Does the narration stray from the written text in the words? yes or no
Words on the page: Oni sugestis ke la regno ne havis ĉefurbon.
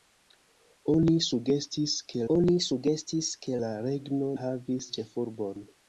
yes